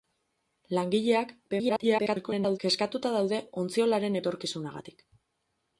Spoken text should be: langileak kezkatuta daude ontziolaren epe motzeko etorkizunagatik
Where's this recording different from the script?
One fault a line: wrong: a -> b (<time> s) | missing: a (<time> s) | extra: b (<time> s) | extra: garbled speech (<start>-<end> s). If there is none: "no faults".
extra: garbled speech (1.5-2.6 s)
missing: epe motzeko (4.2 s)